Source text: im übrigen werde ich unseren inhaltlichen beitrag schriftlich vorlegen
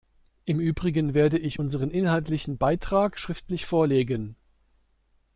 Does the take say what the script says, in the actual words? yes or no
yes